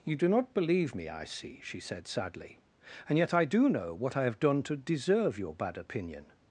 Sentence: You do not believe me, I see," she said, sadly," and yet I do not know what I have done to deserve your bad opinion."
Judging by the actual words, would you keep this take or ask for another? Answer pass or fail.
fail